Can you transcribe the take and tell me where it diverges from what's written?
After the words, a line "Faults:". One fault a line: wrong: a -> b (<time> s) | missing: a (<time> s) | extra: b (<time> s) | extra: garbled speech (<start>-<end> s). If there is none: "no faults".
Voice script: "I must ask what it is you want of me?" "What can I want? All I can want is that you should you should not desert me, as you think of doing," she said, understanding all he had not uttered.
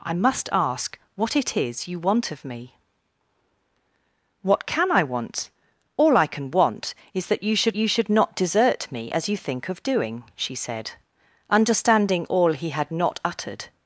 "I must ask what it is you want of me?" "What can I want? All I can want is that you should you should not desert me, as you think of doing," she said, understanding all he had not uttered.
Faults:
no faults